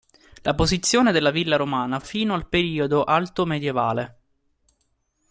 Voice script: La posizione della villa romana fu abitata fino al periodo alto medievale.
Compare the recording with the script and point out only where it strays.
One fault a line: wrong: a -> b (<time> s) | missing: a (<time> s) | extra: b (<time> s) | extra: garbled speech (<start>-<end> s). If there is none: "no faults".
missing: abitata (2.1 s)